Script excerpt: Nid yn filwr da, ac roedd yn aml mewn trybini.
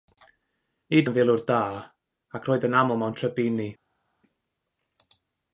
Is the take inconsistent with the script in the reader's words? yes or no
no